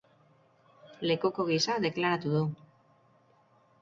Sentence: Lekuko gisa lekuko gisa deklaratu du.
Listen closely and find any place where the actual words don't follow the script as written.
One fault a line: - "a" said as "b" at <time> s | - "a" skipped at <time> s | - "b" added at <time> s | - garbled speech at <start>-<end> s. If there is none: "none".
- "lekuko gisa" skipped at 1.8 s